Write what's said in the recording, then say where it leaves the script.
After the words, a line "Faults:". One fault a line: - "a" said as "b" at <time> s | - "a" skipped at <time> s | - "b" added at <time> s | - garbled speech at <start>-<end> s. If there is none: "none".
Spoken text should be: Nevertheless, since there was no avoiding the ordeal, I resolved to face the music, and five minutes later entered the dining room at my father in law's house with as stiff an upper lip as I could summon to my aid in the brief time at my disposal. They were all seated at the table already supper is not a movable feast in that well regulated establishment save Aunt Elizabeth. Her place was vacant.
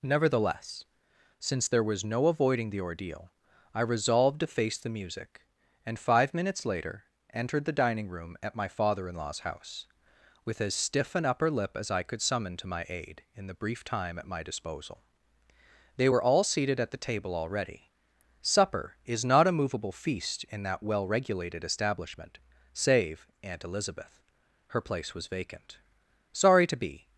Nevertheless, since there was no avoiding the ordeal, I resolved to face the music, and five minutes later entered the dining room at my father in law's house with as stiff an upper lip as I could summon to my aid in the brief time at my disposal. They were all seated at the table already supper is not a movable feast in that well regulated establishment save Aunt Elizabeth. Her place was vacant. "Sorry to be
Faults:
- "Sorry to be" added at 26.3 s